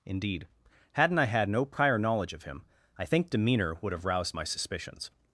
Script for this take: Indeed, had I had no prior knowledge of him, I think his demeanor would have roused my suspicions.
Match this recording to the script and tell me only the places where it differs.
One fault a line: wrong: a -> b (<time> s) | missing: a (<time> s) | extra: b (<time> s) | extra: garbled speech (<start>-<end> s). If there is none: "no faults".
wrong: had -> hadn't (0.9 s)
missing: his (3.3 s)